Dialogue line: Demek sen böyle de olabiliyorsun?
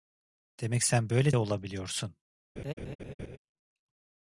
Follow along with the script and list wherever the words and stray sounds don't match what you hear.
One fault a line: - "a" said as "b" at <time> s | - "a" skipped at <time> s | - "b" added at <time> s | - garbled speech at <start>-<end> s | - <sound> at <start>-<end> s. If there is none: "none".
- laugh at 2.6-3.4 s